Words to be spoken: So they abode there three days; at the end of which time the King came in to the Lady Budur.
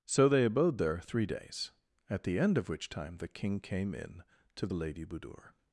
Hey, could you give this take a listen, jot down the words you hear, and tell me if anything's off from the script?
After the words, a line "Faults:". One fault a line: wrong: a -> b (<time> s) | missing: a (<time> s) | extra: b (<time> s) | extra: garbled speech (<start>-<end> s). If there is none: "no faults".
So they abode there three days; at the end of which time the King came in to the Lady Budur.
Faults:
no faults